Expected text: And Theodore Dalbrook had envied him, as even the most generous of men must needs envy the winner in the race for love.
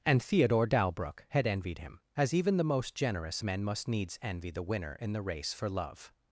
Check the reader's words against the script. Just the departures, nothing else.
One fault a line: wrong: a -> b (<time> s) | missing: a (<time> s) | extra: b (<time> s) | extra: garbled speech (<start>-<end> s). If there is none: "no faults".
missing: of (3.4 s)